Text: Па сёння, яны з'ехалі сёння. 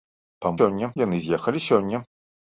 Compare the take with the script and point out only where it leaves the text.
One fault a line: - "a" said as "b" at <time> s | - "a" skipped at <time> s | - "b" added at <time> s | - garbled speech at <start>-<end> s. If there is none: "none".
none